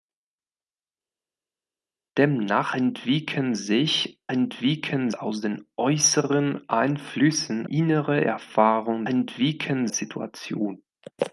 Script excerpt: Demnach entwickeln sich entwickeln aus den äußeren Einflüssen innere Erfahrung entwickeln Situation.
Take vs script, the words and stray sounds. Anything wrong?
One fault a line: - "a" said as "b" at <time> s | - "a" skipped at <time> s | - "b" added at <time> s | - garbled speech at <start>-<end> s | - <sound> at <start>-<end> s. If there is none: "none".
none